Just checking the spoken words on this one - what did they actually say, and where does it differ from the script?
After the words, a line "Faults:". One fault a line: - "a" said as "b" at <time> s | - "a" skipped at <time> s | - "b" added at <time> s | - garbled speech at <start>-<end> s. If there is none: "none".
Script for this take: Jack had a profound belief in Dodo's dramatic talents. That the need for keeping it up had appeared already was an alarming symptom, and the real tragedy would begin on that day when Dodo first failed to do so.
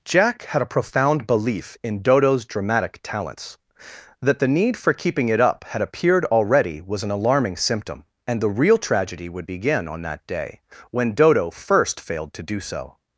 Jack had a profound belief in Dodo's dramatic talents. That the need for keeping it up had appeared already was an alarming symptom, and the real tragedy would begin on that day when Dodo first failed to do so.
Faults:
none